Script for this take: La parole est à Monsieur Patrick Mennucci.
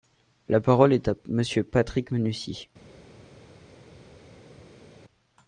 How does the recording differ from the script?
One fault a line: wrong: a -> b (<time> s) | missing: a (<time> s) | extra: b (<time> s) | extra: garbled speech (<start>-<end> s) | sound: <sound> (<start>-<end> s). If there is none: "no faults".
no faults